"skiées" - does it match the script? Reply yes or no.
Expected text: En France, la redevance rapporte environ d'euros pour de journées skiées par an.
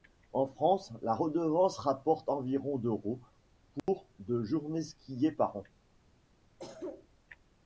yes